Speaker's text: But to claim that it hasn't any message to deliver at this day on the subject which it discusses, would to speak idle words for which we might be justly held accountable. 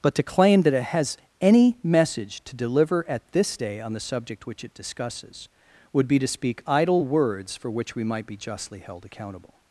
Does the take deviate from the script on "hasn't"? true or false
true